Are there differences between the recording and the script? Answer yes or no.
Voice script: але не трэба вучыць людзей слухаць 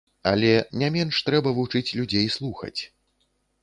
yes